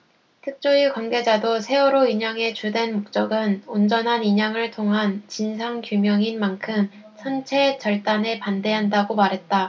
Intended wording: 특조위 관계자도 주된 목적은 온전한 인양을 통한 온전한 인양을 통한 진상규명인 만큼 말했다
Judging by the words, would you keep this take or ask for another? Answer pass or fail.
fail